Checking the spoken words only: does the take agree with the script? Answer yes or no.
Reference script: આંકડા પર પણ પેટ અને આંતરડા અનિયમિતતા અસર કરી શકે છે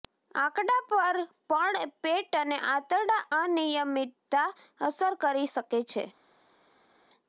yes